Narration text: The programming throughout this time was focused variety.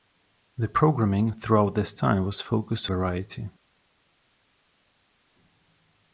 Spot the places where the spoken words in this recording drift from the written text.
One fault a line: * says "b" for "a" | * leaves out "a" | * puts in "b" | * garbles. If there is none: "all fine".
all fine